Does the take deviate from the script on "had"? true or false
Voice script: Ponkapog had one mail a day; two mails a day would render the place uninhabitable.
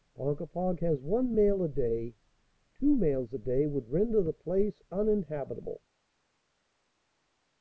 true